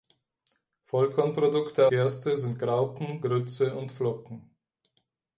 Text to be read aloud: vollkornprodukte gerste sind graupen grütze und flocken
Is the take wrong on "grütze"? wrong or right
right